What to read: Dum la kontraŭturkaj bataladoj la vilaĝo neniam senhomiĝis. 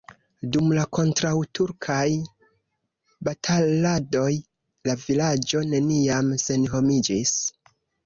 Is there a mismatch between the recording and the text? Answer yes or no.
no